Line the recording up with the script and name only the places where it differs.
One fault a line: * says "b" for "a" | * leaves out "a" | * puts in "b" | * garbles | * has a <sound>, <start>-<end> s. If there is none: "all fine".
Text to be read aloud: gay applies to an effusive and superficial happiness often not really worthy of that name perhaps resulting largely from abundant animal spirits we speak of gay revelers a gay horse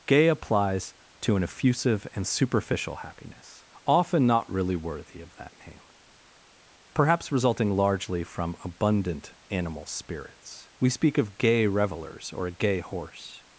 * puts in "or"